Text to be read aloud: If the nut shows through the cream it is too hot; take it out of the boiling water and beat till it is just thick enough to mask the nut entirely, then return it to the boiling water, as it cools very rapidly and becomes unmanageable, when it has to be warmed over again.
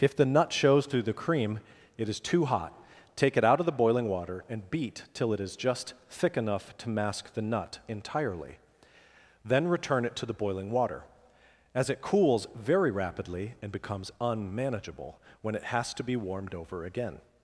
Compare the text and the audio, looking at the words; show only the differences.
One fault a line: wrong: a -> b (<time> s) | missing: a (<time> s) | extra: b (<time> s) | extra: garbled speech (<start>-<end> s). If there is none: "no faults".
no faults